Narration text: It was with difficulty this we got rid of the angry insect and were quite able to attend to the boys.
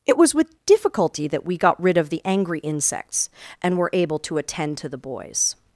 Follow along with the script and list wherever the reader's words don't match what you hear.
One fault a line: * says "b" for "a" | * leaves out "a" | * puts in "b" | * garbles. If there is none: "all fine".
* says "that" for "this"
* says "insects" for "insect"
* leaves out "quite"